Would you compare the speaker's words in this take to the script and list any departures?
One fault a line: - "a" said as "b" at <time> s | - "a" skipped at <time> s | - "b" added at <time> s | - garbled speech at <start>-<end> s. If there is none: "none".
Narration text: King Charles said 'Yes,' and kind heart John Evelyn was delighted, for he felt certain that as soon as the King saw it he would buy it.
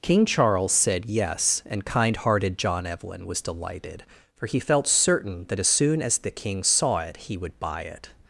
- "heart" said as "hearted" at 2.2 s